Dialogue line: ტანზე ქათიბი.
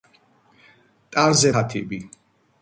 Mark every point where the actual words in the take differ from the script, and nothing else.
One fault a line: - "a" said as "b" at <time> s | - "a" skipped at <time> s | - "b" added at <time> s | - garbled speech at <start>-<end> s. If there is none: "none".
none